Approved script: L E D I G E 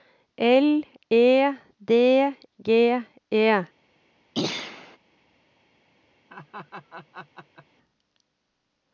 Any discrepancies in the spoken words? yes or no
yes